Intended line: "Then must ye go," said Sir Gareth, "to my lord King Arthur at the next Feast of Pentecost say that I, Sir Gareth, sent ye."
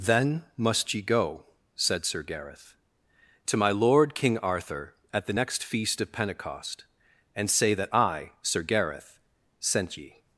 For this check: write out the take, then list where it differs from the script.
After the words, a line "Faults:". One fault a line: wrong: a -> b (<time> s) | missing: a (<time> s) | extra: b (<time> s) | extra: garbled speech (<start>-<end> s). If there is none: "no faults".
"Then must ye go," said Sir Gareth, "to my lord King Arthur at the next Feast of Pentecost and say that I, Sir Gareth, sent ye."
Faults:
extra: and (7.3 s)